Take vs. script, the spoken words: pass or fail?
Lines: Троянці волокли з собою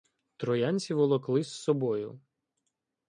pass